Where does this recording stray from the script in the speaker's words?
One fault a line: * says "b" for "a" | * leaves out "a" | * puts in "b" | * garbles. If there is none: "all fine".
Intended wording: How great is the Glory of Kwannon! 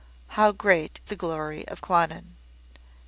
* leaves out "is"